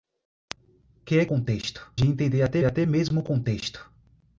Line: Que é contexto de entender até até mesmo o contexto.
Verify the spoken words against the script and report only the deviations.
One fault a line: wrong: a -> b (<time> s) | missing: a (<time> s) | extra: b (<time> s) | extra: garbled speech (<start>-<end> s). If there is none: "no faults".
no faults